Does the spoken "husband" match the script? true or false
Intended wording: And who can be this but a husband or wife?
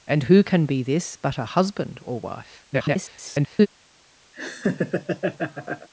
true